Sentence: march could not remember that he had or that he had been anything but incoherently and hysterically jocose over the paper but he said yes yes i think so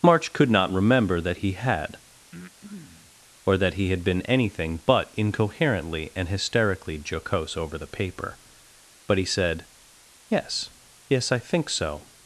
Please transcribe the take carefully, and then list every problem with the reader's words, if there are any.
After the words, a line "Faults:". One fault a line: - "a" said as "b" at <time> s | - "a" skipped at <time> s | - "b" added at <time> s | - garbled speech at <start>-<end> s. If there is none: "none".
march could not remember that he had or that he had been anything but incoherently and hysterically jocose over the paper but he said yes yes i think so
Faults:
none